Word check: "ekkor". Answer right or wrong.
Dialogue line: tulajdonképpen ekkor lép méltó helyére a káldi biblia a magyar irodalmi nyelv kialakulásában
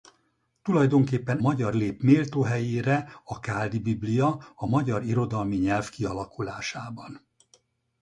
wrong